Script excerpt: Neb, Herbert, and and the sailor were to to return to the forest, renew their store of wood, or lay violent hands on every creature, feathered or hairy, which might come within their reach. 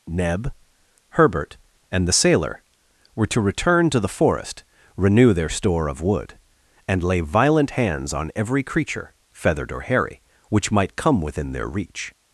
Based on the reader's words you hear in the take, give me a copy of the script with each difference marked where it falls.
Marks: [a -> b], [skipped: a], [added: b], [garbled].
Neb, Herbert, and [skipped: and] the sailor were to [skipped: to] return to the forest, renew their store of wood, [or -> and] lay violent hands on every creature, feathered or hairy, which might come within their reach.